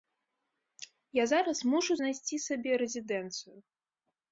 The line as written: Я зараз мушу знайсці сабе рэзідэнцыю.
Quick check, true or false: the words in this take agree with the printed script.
true